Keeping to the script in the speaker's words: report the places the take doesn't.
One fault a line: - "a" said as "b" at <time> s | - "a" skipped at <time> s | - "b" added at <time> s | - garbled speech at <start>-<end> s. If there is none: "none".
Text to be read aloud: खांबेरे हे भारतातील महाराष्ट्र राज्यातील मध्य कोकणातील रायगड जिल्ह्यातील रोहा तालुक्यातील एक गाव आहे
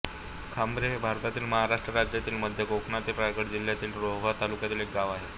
none